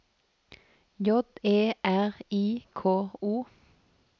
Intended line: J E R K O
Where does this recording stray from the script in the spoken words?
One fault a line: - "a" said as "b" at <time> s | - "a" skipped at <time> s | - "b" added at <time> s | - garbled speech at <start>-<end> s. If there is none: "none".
- "I" added at 2.3 s